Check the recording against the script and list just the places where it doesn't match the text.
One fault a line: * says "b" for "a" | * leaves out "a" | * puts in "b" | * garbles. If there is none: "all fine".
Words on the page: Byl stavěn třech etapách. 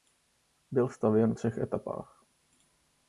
all fine